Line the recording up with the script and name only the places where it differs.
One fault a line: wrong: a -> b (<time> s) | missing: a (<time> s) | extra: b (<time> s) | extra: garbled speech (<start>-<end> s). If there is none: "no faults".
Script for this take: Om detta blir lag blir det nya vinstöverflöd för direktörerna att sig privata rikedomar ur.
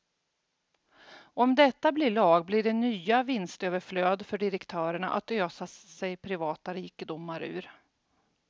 extra: ösa (5.3 s)